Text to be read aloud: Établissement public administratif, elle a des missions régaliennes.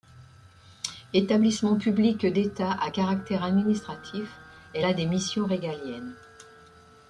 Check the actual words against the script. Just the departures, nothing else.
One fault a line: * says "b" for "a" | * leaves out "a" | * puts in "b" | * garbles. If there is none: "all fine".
* puts in "d'État à caractère"